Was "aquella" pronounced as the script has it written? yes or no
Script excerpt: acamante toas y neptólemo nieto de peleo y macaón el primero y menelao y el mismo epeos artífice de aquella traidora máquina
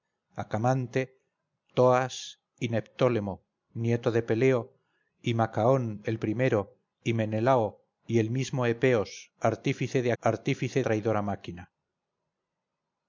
no